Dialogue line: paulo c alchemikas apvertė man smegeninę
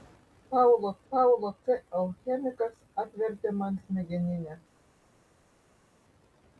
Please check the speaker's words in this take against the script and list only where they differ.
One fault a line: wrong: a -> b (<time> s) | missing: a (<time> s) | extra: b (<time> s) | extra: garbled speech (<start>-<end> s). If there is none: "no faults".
extra: paulo (1.1 s)